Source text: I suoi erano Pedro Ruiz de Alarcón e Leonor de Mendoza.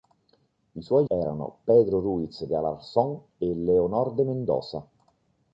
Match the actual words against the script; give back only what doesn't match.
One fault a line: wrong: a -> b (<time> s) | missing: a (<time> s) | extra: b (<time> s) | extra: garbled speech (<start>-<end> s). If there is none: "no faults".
no faults